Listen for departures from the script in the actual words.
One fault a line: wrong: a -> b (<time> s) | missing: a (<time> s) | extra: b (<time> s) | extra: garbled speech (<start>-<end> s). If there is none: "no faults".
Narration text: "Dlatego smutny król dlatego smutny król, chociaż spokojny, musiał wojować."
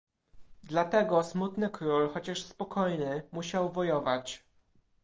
missing: dlatego smutny król (2.1 s)